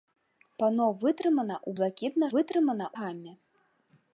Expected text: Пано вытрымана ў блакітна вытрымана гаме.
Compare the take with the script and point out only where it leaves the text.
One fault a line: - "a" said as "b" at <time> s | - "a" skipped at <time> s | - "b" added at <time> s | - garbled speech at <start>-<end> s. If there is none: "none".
none